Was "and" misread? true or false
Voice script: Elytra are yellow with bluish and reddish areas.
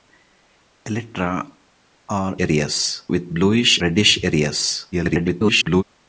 true